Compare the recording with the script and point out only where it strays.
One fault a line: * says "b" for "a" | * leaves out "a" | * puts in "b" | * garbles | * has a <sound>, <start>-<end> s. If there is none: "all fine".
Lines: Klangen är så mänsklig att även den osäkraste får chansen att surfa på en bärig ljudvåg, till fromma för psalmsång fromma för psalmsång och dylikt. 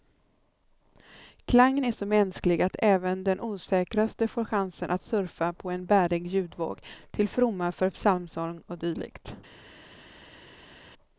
* leaves out "fromma för psalmsång"